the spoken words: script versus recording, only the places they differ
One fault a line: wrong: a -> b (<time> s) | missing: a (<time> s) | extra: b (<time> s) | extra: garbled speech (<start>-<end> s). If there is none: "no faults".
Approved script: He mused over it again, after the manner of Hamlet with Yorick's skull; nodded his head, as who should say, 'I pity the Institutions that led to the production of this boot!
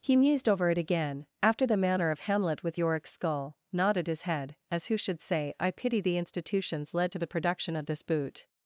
missing: that (6.9 s)